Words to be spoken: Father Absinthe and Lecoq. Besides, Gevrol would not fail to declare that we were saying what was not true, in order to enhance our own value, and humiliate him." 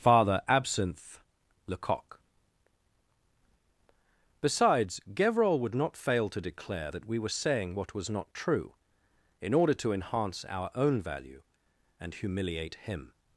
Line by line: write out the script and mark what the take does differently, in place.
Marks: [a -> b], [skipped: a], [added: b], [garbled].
Father Absinthe [skipped: and] Lecoq. Besides, Gevrol would not fail to declare that we were saying what was not true, in order to enhance our own value, and humiliate him."